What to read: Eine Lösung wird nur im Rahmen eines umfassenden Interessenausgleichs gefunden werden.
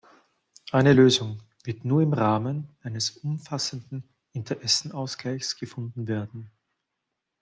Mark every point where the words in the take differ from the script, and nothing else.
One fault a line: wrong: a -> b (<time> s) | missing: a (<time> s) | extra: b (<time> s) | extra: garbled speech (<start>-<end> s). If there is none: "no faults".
no faults